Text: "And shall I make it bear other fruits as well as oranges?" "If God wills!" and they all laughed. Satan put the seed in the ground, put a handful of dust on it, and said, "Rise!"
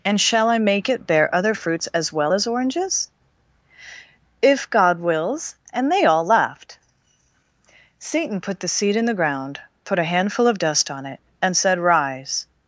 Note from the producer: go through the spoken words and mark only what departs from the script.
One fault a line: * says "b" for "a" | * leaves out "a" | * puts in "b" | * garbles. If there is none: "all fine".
all fine